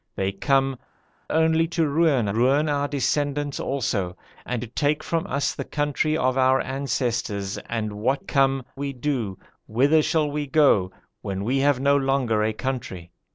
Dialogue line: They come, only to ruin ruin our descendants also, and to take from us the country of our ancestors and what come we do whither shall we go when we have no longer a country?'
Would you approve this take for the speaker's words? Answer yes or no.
yes